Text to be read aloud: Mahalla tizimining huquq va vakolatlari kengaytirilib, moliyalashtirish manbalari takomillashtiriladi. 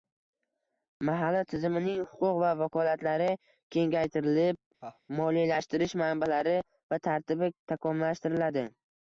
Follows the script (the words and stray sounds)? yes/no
no